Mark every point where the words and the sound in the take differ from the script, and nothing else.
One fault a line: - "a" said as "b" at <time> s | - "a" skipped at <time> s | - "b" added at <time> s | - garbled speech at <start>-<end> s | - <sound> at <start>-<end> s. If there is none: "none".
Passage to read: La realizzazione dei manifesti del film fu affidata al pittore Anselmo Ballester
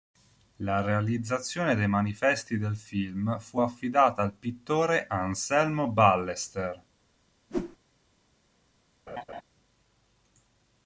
- whoosh at 7.5-7.8 s
- laugh at 9.1-9.4 s